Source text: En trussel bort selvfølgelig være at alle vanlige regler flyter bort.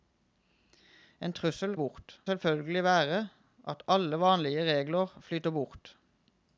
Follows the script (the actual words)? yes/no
yes